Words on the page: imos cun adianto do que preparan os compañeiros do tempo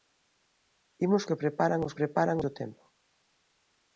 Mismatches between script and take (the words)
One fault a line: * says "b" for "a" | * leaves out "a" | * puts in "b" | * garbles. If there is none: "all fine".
* leaves out "cun adianto do"
* says "preparan" for "compañeiros"